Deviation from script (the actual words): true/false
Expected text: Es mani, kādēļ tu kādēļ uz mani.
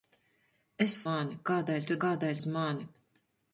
false